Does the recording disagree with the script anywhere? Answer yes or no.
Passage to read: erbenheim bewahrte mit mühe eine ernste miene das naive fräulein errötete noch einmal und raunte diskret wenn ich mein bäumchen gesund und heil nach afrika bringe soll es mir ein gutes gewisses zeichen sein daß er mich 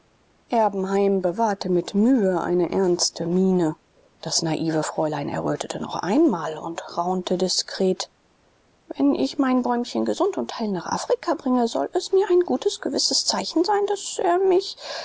no